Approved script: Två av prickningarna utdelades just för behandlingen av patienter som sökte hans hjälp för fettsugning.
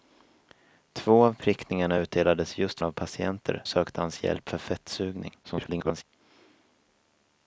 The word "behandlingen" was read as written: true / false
false